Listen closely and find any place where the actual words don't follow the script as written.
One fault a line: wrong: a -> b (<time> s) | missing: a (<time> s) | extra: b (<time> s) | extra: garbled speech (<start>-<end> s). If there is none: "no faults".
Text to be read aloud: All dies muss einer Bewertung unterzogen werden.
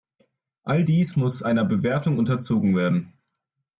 no faults